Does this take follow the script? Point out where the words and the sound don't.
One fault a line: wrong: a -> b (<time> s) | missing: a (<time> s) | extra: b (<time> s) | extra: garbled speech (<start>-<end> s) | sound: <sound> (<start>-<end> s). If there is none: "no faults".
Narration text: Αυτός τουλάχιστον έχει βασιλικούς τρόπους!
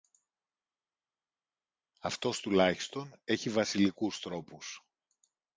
no faults